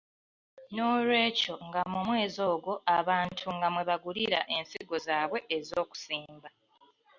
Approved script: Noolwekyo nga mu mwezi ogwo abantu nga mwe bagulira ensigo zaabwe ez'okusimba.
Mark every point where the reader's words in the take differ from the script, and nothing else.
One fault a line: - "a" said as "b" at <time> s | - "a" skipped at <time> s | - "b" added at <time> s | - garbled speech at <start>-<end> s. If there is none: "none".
none